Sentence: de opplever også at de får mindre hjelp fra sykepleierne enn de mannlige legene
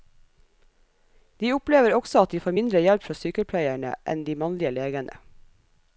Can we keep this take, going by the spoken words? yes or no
yes